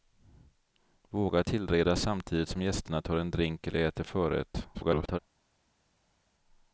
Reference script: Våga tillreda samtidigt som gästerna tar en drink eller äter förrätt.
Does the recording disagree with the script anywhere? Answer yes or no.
yes